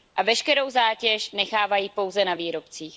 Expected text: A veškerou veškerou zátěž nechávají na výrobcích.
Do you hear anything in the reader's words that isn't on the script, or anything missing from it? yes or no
yes